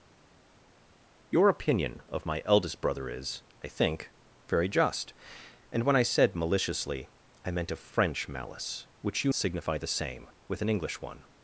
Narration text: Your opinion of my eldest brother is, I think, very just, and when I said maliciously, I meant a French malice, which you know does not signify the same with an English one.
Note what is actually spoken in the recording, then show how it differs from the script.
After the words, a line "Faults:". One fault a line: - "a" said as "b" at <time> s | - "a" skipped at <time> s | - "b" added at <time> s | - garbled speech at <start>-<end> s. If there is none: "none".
Your opinion of my eldest brother is, I think, very just, and when I said maliciously, I meant a French malice, which you signify the same with an English one.
Faults:
- "know does not" skipped at 9.3 s